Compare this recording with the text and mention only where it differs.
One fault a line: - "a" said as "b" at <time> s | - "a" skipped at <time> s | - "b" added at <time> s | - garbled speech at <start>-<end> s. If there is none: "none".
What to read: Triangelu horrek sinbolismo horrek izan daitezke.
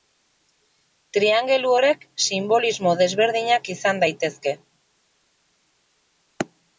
- "horrek" said as "desberdinak" at 3.0 s